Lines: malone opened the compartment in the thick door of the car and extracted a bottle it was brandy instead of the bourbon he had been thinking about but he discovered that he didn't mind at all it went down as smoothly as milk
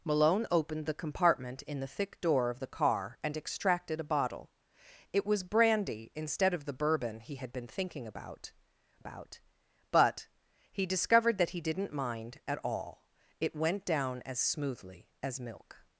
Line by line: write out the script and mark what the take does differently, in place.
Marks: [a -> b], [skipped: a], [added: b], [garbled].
malone opened the compartment in the thick door of the car and extracted a bottle it was brandy instead of the bourbon he had been thinking about [added: about] but he discovered that he didn't mind at all it went down as smoothly as milk